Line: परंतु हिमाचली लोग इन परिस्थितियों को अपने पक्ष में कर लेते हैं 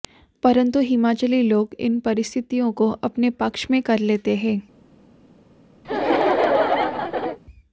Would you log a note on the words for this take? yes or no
no